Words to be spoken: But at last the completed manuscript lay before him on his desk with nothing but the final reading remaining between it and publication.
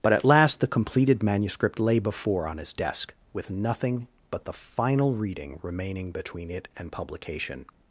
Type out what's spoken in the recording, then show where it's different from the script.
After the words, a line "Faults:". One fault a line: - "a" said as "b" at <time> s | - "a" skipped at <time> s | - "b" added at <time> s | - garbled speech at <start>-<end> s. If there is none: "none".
But at last the completed manuscript lay before on his desk with nothing but the final reading remaining between it and publication.
Faults:
- "him" skipped at 2.5 s